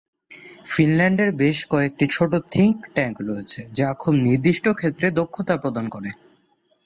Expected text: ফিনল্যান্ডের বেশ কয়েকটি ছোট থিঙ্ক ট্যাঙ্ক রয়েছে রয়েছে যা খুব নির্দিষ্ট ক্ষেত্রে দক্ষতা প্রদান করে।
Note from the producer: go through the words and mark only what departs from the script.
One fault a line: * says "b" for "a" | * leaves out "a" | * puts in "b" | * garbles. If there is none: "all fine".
* leaves out "রয়েছে"